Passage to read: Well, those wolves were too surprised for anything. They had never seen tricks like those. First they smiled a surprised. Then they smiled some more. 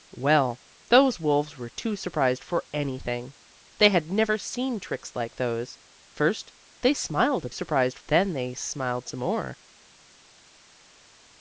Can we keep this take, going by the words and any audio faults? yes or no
yes